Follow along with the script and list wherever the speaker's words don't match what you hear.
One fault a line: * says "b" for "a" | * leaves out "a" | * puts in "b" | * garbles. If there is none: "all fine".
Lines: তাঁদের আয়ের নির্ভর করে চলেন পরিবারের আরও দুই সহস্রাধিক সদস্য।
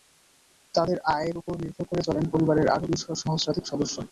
* puts in "ওপর"